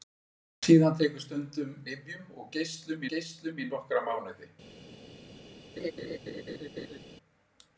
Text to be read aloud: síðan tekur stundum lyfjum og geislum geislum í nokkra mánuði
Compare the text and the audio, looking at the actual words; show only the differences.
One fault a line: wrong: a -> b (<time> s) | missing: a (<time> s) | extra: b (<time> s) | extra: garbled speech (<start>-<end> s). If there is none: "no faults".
no faults